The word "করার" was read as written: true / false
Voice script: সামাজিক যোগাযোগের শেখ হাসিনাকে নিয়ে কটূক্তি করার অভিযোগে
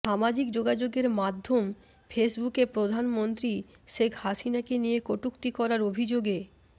true